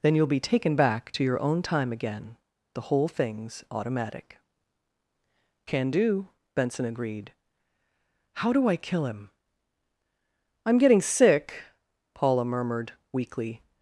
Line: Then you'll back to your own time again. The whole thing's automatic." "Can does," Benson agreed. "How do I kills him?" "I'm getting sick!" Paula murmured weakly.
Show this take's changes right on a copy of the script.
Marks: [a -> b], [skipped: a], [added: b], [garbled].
Then you'll [added: be taken] back to your own time again. The whole thing's automatic." "Can [does," -> do] Benson agreed. "How do I [kills -> kill] him?" "I'm getting sick!" Paula murmured weakly.